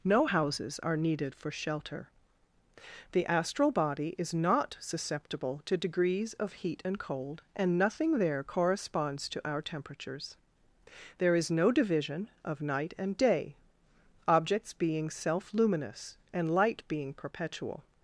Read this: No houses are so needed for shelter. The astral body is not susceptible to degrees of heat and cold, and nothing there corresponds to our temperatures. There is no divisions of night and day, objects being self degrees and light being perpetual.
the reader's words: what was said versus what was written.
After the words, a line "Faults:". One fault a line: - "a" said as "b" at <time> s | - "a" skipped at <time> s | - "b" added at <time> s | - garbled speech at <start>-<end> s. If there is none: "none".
No houses are needed for shelter. The astral body is not susceptible to degrees of heat and cold, and nothing there corresponds to our temperatures. There is no division of night and day, objects being self luminous and light being perpetual.
Faults:
- "so" skipped at 1.0 s
- "divisions" said as "division" at 11.7 s
- "degrees" said as "luminous" at 15.5 s